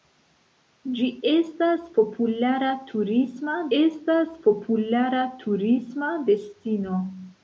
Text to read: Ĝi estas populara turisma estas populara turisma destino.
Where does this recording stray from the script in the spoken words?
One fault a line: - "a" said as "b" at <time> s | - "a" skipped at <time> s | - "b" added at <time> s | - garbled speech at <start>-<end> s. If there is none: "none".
none